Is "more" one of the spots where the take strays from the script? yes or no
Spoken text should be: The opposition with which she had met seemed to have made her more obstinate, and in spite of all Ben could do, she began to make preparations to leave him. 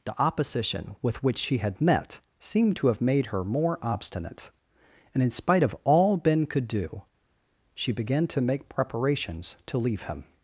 no